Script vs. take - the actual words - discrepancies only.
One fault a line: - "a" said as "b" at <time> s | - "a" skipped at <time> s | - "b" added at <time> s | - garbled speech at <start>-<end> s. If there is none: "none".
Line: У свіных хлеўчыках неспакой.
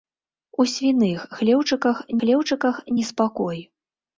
- "хлеўчыках" added at 2.2 s